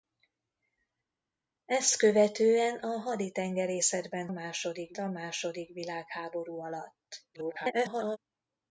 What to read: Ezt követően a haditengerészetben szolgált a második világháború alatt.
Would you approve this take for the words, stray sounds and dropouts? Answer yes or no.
no